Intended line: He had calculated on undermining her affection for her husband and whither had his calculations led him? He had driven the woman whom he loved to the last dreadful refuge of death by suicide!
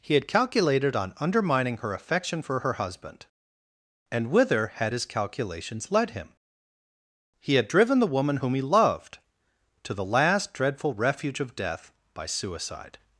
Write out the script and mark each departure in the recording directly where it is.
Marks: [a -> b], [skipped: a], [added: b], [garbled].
He had calculated on undermining her affection for her husband and whither had his calculations led him? He had driven the woman whom he loved to the last dreadful refuge of death by suicide!